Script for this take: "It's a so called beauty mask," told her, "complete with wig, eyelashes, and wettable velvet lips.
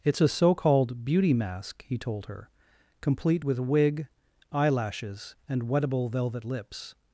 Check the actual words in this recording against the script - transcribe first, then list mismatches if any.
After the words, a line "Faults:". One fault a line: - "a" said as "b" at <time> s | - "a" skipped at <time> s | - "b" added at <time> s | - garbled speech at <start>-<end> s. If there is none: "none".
"It's a so called beauty mask," he told her, "complete with wig, eyelashes, and wettable velvet lips.
Faults:
- "he" added at 1.9 s